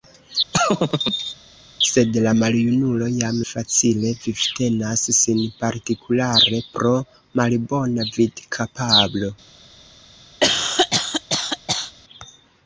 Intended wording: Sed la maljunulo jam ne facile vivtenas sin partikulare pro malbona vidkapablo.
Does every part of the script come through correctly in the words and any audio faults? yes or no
no